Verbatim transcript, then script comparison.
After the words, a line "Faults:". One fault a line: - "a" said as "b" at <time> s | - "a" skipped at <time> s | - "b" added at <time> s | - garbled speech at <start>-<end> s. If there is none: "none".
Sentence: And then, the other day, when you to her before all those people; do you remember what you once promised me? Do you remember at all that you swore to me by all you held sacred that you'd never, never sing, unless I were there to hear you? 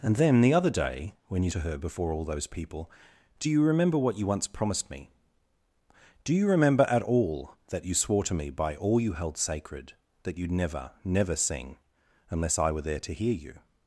And then, the other day, when you to her before all those people; do you remember what you once promised me? Do you remember at all that you swore to me by all you held sacred that you'd never, never sing, unless I were there to hear you?
Faults:
none